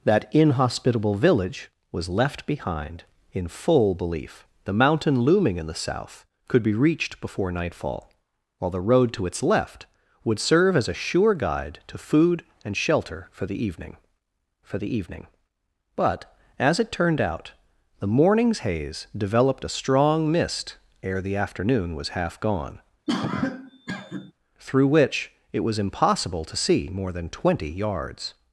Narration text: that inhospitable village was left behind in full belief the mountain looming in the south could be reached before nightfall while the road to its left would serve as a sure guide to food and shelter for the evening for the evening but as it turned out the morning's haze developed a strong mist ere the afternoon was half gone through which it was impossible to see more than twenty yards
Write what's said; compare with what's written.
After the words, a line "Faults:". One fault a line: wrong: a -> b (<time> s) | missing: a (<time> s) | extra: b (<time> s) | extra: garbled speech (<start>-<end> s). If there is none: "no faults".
that inhospitable village was left behind in full belief the mountain looming in the south could be reached before nightfall while the road to its left would serve as a sure guide to food and shelter for the evening for the evening but as it turned out the morning's haze developed a strong mist ere the afternoon was half gone through which it was impossible to see more than twenty yards
Faults:
no faults